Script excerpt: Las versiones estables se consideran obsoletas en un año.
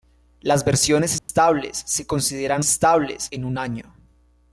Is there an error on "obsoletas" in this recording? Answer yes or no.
yes